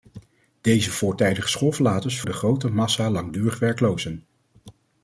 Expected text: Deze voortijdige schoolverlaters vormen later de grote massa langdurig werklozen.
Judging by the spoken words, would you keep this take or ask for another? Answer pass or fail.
fail